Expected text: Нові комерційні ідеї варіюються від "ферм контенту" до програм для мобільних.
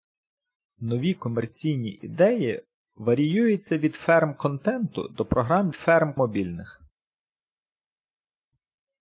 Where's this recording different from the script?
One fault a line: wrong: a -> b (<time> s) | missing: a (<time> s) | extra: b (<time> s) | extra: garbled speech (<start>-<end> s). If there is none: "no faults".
wrong: для -> ферм (5.7 s)